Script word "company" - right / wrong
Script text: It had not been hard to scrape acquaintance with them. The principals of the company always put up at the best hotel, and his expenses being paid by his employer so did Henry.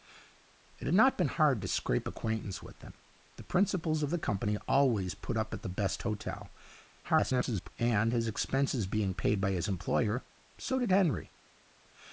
right